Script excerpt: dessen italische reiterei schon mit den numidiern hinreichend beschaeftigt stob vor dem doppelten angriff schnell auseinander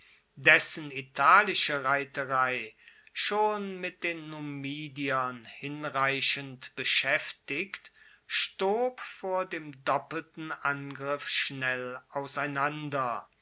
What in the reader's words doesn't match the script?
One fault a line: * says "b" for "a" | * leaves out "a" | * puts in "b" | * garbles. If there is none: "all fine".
all fine